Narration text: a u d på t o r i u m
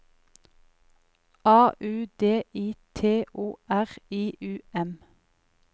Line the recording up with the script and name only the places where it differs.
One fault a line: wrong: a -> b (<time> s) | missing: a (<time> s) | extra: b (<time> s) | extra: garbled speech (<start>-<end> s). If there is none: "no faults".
wrong: på -> i (2.5 s)